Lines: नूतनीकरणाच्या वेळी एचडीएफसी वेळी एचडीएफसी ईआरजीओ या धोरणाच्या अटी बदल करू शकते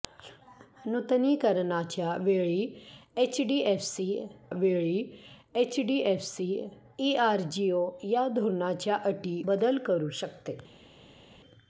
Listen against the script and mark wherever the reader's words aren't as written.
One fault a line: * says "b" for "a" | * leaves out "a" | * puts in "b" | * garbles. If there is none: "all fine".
all fine